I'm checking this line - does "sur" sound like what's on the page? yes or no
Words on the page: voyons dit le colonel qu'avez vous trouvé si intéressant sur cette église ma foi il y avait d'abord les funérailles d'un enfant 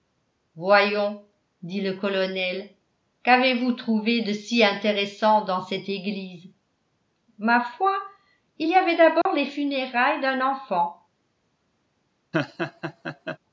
no